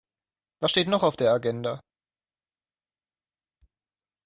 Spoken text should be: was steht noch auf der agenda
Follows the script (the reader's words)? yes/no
yes